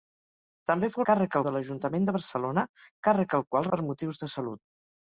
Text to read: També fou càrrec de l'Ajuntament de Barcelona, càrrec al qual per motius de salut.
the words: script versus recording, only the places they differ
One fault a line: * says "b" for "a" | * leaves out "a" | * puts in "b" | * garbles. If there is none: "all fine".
all fine